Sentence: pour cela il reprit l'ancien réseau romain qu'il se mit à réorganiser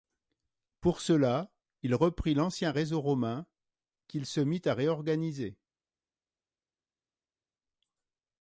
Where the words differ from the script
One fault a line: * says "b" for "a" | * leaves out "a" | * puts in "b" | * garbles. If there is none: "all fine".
all fine